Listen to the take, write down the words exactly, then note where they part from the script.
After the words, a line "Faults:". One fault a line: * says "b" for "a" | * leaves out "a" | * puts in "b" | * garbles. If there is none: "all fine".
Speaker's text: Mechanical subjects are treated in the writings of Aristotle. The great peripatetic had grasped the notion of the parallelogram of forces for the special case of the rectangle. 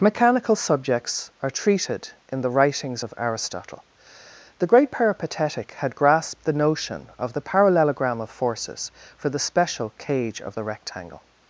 Mechanical subjects are treated in the writings of Aristotle. The great peripatetic had grasped the notion of the parallelogram of forces for the special cage of the rectangle.
Faults:
* says "cage" for "case"